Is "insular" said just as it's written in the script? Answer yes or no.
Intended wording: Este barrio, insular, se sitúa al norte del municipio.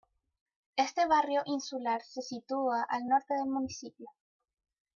yes